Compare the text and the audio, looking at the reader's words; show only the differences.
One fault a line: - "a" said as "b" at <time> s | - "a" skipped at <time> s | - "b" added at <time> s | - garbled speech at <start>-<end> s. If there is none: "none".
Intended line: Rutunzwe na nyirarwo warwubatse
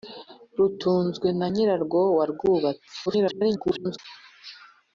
- garbled speech at 3.1-4.0 s